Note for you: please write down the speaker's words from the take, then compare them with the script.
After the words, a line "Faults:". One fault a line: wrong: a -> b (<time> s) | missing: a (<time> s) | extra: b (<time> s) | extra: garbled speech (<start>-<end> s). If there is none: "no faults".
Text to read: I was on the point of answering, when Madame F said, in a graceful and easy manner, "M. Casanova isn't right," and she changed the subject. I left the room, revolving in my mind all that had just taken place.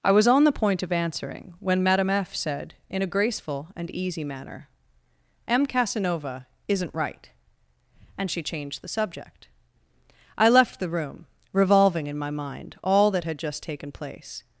I was on the point of answering, when Madame F said, in a graceful and easy manner, "M. Casanova isn't right," and she changed the subject. I left the room, revolving in my mind all that had just taken place.
Faults:
no faults